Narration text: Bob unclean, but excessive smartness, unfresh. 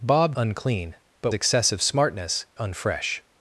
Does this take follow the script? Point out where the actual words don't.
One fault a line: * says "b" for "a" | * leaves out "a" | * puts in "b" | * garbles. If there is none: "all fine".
all fine